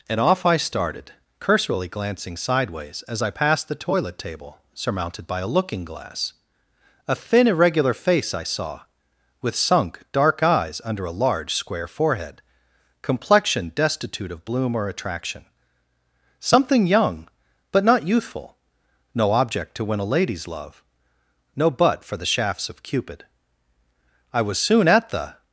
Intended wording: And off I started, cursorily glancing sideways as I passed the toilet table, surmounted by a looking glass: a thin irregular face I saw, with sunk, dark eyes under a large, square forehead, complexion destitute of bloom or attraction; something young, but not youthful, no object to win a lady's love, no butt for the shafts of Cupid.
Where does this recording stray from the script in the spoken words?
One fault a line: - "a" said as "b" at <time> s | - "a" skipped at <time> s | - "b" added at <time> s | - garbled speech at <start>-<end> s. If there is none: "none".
- "I was soon at the" added at 24.3 s